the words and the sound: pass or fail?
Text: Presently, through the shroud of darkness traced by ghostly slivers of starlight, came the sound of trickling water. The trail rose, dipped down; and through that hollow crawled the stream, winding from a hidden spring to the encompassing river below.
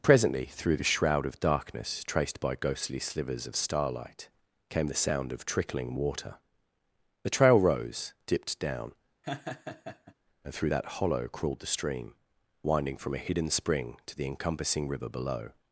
fail